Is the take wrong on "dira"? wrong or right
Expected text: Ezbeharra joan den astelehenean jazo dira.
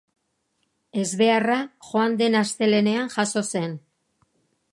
wrong